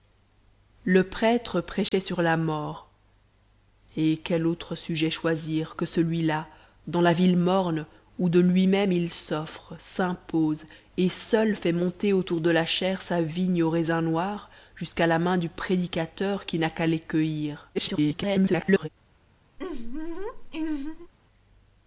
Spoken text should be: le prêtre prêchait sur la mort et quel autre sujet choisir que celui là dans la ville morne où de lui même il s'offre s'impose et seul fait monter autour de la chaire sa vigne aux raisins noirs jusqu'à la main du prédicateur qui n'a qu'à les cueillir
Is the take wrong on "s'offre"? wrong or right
right